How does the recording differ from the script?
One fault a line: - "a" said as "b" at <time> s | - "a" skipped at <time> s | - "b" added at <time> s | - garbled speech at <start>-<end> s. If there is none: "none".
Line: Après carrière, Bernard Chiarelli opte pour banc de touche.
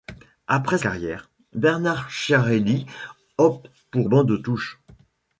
none